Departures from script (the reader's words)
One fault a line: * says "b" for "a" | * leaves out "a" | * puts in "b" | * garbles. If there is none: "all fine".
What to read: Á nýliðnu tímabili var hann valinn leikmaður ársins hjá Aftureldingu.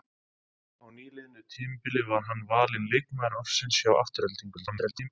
* garbles